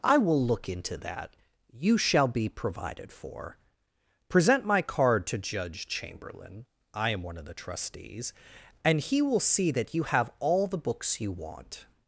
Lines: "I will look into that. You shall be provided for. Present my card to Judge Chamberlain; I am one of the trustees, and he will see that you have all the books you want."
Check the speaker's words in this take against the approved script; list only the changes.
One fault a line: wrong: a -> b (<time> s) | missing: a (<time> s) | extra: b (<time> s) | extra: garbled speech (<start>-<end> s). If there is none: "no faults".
no faults